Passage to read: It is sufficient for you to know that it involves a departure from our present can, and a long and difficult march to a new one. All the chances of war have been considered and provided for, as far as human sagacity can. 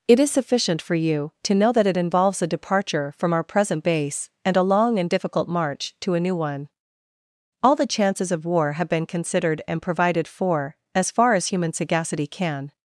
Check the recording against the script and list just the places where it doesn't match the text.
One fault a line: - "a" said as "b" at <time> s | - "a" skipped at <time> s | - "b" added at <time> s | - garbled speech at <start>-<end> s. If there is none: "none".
- "can" said as "base" at 3.8 s